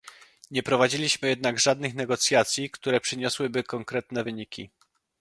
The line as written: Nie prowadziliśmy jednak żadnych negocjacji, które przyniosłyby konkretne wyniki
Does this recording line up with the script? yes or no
yes